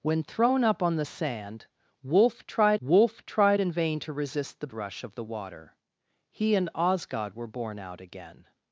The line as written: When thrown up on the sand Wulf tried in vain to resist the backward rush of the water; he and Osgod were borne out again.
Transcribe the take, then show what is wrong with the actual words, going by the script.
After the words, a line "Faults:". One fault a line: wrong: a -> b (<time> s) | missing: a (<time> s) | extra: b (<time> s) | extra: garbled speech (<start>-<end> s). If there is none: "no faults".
When thrown up on the sand Wulf tried Wulf tried in vain to resist the rush of the water; he and Osgod were borne out again.
Faults:
extra: Wulf tried (2.8 s)
missing: backward (4.7 s)